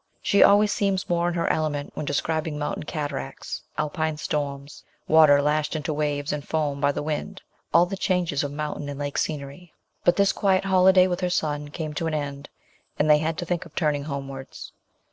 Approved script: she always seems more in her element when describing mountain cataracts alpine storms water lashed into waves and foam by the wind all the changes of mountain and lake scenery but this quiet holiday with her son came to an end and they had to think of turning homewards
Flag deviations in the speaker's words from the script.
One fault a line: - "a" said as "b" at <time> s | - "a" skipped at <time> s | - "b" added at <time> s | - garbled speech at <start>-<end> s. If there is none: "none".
none